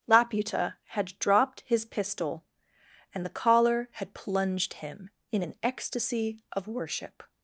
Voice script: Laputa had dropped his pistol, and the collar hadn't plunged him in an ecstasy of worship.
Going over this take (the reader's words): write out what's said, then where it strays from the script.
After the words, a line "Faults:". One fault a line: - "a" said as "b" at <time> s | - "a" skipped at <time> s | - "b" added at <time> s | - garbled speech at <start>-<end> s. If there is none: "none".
Laputa had dropped his pistol, and the collar had plunged him in an ecstasy of worship.
Faults:
- "hadn't" said as "had" at 3.9 s